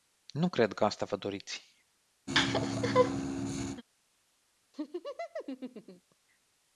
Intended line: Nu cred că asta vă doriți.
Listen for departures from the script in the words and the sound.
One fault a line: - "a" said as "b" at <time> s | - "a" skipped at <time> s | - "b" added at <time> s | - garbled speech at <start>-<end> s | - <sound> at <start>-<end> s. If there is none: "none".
- laugh at 2.3-3.8 s
- laugh at 4.7-6.2 s